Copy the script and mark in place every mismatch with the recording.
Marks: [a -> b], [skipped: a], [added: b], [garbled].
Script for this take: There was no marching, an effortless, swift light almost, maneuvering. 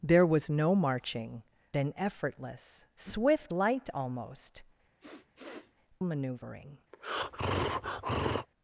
There was no marching, an effortless, swift light almost, maneuvering.